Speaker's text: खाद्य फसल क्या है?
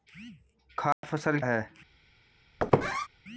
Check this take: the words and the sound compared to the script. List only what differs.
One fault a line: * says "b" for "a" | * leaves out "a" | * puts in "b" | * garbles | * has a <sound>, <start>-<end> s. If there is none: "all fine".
* has a dropout, 0.9-1.0 s
* leaves out "क्या"
* has a squeak, 2.6-3.1 s